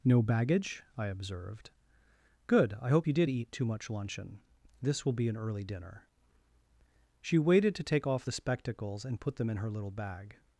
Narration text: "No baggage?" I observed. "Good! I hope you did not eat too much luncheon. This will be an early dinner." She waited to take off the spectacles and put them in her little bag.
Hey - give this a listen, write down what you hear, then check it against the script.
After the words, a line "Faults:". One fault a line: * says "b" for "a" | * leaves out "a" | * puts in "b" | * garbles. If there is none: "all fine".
"No baggage?" I observed. "Good! I hope you did eat too much luncheon. This will be an early dinner." She waited to take off the spectacles and put them in her little bag.
Faults:
* leaves out "not"